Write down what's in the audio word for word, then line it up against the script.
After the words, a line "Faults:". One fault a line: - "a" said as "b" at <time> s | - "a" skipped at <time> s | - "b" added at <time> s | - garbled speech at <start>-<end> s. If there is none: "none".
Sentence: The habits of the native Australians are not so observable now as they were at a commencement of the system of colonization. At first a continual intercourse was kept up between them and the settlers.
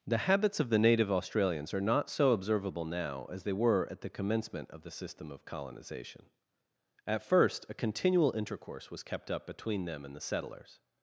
The habits of the native Australians are not so observable now as they were at the commencement of the system of colonization. At first a continual intercourse was kept up between them and the settlers.
Faults:
- "a" said as "the" at 4.0 s